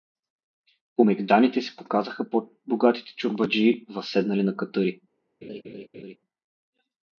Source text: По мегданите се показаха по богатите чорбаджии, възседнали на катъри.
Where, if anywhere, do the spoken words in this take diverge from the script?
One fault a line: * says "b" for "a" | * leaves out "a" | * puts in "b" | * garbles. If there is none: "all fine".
all fine